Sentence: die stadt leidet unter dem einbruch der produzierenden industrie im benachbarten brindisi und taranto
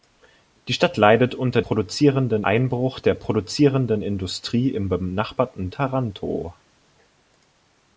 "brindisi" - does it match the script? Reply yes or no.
no